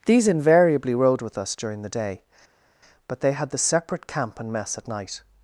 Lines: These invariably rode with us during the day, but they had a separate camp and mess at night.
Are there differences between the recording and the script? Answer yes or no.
yes